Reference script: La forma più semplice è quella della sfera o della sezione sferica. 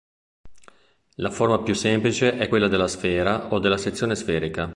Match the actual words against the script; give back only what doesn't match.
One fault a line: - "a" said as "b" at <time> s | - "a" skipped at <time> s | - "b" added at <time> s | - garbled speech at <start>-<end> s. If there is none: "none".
none